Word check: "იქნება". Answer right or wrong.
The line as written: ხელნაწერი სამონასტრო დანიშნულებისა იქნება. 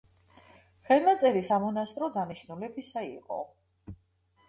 wrong